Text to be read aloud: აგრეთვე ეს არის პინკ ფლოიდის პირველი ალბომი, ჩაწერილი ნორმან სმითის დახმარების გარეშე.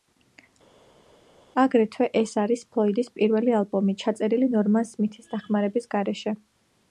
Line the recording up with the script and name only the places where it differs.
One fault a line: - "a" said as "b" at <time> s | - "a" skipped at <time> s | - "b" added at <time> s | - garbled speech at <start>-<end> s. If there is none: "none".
- "პინკ" skipped at 2.6 s